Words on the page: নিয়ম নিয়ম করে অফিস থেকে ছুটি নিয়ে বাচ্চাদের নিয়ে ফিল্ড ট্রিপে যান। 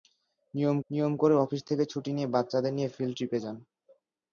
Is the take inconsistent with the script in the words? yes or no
no